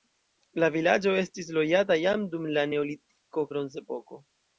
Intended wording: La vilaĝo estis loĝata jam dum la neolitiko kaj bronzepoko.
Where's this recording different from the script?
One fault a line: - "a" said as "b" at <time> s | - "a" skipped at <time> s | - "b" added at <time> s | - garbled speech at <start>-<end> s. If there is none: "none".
- "kaj" skipped at 3.5 s